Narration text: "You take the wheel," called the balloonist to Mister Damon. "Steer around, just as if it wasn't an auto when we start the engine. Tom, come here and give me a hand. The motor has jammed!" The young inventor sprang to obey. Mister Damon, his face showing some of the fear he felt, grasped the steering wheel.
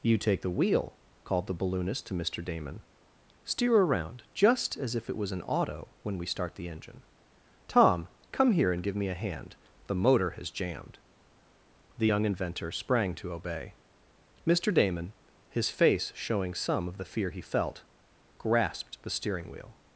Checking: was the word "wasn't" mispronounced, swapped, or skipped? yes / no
yes